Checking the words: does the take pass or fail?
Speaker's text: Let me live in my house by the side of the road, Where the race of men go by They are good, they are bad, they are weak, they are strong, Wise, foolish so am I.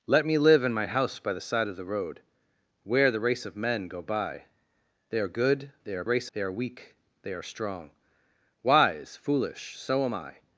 fail